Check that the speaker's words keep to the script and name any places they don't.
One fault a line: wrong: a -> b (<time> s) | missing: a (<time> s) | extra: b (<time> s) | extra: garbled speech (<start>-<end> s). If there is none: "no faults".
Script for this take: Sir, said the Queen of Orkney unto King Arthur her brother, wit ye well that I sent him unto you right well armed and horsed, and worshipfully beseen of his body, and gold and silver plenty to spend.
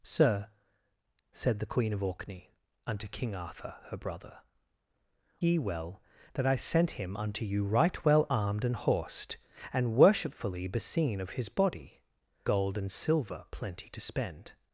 missing: wit (4.4 s)
missing: and (12.0 s)